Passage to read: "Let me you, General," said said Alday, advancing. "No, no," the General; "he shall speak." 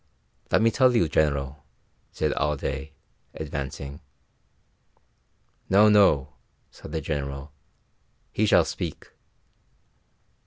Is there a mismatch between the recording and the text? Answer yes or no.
yes